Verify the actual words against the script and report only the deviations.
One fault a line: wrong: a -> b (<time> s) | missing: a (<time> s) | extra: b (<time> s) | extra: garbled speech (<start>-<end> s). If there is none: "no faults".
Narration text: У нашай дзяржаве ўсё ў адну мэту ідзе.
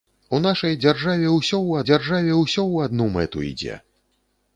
extra: дзяржаве ўсё ў (1.9 s)